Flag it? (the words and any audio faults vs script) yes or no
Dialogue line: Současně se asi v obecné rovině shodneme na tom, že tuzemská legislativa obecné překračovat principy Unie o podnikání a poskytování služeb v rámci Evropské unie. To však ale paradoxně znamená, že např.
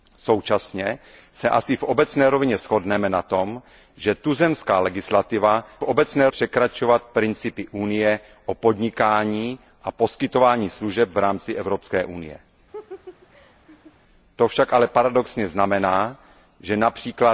yes